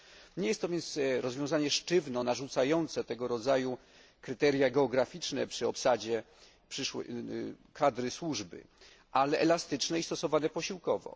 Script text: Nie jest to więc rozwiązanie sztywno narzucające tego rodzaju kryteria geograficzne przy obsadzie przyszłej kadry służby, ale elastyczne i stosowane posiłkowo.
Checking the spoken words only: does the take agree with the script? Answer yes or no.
yes